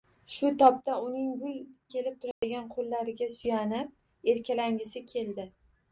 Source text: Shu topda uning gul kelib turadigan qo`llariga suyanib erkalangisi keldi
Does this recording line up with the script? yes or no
yes